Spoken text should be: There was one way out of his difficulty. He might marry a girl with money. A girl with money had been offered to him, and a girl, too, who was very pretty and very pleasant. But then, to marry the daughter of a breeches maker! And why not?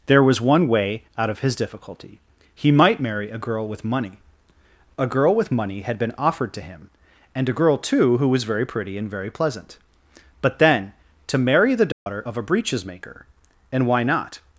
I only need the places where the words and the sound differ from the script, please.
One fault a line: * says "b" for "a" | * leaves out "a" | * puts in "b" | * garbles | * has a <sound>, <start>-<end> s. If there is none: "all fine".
* has a dropout, 11.9-12.1 s